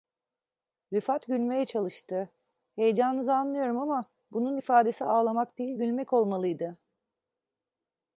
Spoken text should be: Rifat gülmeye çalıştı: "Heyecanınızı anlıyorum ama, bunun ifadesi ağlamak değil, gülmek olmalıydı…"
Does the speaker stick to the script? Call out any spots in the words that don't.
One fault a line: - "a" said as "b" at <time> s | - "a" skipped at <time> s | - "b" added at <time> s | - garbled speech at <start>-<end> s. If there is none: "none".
none